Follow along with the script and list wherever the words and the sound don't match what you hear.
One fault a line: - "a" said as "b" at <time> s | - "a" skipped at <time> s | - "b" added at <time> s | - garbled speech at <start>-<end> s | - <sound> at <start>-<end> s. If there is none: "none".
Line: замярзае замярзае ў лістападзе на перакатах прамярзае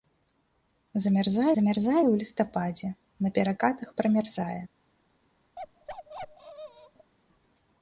- bark at 5.6-7.1 s